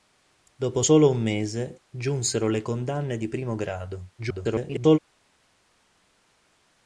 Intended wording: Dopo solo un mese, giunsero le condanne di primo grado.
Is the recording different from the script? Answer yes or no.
yes